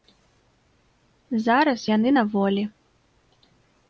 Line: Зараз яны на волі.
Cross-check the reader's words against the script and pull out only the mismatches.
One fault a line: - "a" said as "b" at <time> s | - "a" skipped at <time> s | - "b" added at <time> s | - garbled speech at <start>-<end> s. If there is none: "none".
none